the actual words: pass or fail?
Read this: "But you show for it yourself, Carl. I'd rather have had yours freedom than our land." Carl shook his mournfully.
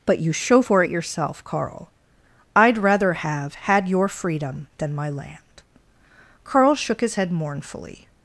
fail